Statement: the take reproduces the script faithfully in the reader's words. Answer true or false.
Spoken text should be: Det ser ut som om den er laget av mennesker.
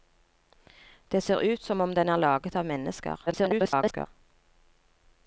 false